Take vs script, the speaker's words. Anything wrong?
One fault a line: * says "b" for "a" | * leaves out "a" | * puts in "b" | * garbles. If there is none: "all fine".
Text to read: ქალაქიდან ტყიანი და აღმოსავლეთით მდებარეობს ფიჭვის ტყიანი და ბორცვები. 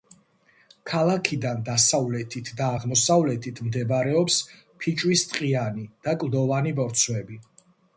* says "დასავლეთით" for "ტყიანი"
* puts in "კლდოვანი"